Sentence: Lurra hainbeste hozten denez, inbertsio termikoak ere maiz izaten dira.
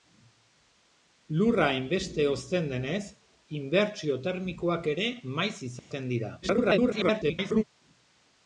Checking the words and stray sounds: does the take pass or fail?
fail